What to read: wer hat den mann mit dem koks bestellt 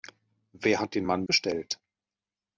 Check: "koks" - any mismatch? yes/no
yes